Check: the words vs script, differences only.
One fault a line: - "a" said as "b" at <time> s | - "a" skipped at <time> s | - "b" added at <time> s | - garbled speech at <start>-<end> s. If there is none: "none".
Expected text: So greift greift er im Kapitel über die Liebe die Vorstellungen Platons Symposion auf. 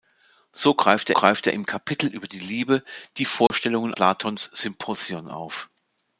none